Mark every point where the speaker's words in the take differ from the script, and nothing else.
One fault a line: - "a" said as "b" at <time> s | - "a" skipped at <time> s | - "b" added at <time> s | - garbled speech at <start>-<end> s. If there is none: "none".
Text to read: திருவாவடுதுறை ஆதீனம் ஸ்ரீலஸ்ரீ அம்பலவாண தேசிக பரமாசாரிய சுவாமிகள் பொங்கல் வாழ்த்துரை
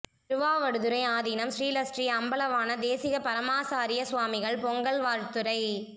none